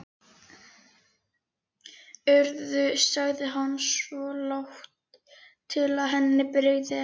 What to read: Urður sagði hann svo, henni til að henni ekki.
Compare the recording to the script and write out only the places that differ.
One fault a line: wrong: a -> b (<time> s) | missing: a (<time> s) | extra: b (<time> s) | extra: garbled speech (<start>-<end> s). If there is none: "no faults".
wrong: henni -> lágt (4.5 s)
extra: brygði (6.6 s)